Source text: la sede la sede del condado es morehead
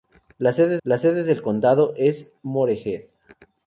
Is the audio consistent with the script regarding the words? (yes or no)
yes